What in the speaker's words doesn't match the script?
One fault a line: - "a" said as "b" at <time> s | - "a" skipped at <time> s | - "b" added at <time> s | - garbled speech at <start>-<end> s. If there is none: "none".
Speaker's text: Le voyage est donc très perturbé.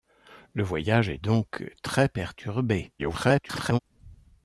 - garbled speech at 3.0-3.8 s